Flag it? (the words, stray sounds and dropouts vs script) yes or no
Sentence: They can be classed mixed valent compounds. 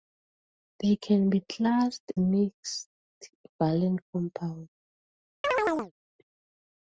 yes